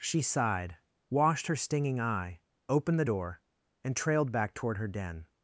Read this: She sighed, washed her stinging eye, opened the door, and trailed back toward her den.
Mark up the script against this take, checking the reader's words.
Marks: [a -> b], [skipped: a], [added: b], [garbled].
She sighed, washed her stinging eye, opened the door, and trailed back toward her den.